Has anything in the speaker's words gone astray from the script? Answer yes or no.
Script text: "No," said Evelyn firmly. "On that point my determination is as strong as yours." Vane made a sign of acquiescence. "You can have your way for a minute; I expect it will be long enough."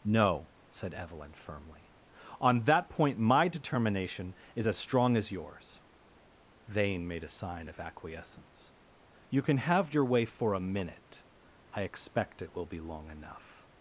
no